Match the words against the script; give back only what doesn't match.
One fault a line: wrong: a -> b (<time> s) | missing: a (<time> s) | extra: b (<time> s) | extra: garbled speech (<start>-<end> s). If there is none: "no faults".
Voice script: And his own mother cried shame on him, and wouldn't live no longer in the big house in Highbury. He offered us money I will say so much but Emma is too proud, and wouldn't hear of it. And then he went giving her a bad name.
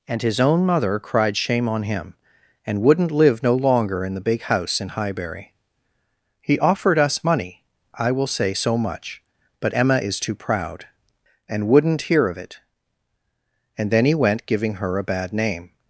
no faults